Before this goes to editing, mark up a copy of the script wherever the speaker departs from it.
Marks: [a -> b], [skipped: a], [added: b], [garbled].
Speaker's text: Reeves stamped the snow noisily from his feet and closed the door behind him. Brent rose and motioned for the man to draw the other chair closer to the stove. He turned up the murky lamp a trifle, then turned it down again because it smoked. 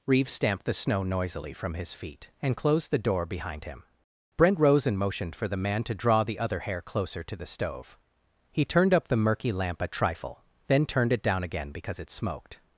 Reeves stamped the snow noisily from his feet and closed the door behind him. Brent rose and motioned for the man to draw the other [chair -> hair] closer to the stove. He turned up the murky lamp a trifle, then turned it down again because it smoked.